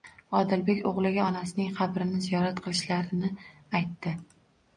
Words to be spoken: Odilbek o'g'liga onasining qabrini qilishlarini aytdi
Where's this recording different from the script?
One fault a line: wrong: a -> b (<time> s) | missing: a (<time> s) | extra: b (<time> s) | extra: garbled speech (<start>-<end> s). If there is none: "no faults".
extra: ziyorat (2.3 s)